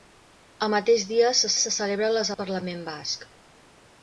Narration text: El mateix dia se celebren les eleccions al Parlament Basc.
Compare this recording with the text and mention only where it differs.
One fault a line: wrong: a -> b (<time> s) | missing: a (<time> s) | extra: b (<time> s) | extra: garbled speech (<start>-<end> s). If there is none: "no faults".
extra: se (1.6 s)
missing: eleccions (2.3 s)